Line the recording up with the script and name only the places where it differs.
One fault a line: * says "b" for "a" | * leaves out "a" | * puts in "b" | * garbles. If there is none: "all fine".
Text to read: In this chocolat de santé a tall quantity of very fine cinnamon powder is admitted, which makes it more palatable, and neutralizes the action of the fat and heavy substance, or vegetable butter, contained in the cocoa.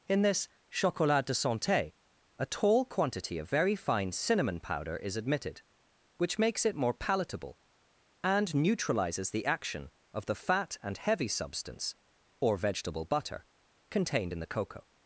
all fine